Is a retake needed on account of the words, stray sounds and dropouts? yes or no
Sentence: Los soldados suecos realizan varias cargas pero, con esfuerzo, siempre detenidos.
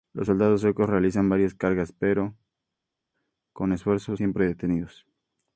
no